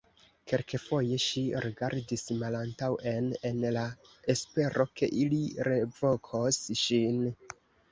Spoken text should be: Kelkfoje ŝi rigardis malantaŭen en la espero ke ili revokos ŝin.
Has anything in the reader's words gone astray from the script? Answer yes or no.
no